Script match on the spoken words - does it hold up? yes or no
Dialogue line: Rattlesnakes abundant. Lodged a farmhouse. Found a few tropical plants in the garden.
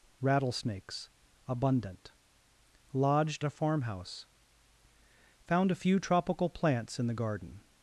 yes